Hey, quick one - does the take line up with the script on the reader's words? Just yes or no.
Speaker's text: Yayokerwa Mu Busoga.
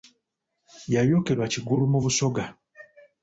no